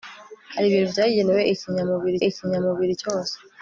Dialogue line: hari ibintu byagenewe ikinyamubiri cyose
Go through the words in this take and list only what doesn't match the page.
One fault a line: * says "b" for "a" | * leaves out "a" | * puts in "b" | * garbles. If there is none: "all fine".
* puts in "ikinyamubiri"